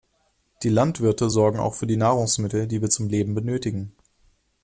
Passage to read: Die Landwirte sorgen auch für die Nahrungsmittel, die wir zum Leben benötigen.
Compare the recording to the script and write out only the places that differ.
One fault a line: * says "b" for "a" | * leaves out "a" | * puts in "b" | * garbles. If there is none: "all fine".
all fine